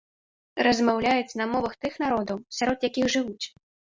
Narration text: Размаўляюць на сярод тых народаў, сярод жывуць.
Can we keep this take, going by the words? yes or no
no